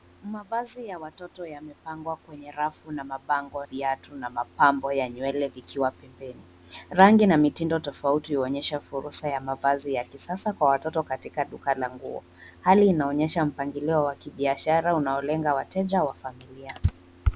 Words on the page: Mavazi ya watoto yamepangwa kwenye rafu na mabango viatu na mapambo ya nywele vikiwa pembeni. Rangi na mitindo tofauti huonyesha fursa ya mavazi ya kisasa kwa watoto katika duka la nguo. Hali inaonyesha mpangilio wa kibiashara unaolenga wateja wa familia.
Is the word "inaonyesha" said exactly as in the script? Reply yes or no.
yes